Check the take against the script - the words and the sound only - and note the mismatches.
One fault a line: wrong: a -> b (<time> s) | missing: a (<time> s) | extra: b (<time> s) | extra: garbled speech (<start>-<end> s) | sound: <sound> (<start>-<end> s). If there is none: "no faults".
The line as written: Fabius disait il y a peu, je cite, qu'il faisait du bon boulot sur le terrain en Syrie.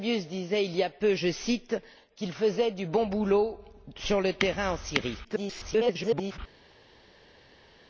extra: garbled speech (5.2-6.4 s)